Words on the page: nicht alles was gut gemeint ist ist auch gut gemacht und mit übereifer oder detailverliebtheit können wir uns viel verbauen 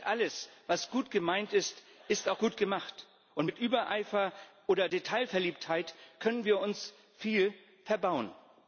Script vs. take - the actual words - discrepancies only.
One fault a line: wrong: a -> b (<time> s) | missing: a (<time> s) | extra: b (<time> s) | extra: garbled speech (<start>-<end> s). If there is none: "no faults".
no faults